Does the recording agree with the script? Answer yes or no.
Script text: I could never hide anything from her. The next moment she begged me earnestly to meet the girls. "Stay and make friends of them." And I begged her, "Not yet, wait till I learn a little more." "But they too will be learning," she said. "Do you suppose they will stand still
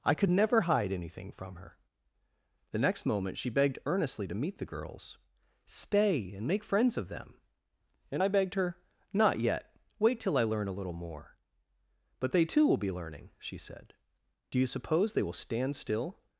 no